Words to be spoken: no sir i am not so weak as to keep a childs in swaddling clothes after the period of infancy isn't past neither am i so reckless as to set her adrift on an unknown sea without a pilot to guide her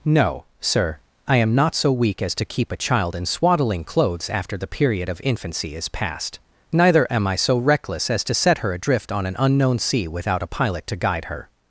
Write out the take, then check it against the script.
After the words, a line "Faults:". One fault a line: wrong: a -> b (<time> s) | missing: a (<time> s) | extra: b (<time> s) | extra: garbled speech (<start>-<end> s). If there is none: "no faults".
no sir i am not so weak as to keep a child in swaddling clothes after the period of infancy is past neither am i so reckless as to set her adrift on an unknown sea without a pilot to guide her
Faults:
wrong: childs -> child (2.8 s)
wrong: isn't -> is (5.8 s)